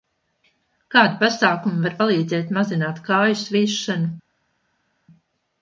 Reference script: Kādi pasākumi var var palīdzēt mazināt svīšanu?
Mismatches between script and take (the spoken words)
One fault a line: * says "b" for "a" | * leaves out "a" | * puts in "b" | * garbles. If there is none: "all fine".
* leaves out "var"
* puts in "kāju"